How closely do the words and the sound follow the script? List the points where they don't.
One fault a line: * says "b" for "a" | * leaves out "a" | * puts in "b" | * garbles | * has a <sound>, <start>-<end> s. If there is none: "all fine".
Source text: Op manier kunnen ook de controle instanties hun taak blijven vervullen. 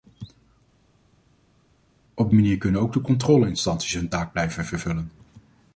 all fine